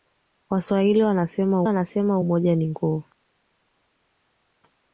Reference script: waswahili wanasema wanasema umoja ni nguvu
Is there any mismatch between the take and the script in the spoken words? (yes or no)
no